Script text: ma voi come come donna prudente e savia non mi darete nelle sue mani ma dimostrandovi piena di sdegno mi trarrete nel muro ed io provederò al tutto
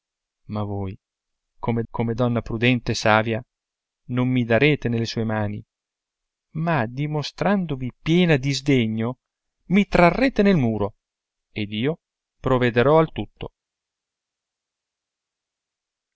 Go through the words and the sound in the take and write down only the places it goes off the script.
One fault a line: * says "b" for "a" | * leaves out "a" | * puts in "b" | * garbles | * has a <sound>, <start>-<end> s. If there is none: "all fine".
all fine